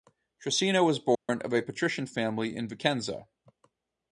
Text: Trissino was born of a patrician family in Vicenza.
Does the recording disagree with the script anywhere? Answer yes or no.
no